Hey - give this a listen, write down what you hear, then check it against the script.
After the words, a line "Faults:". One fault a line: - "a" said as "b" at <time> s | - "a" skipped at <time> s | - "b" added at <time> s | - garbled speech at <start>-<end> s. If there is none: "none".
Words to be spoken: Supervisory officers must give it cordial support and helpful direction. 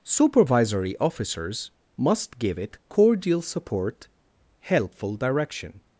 Supervisory officers must give it cordial support helpful direction.
Faults:
- "and" skipped at 4.1 s